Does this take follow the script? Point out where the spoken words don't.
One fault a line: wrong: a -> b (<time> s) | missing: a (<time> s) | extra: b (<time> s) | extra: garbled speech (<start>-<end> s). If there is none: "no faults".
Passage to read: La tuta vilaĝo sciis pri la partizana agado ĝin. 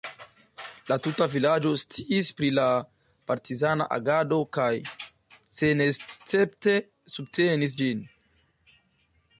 extra: kaj senescepte subtenis (4.6 s)